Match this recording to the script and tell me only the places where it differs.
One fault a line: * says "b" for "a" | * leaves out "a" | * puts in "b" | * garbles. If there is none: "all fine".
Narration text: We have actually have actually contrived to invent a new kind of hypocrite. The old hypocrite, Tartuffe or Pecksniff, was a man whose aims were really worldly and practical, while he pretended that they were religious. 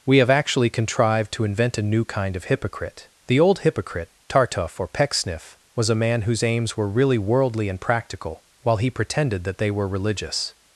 * leaves out "have actually"